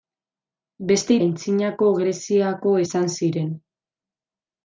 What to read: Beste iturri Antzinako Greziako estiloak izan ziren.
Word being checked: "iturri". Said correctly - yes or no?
no